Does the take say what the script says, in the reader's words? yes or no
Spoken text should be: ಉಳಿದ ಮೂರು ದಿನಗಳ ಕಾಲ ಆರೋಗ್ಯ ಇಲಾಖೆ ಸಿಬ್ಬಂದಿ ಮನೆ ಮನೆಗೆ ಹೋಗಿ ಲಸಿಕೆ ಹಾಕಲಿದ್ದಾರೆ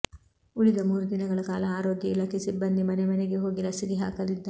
yes